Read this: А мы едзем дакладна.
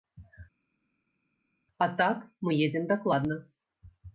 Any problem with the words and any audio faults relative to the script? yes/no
yes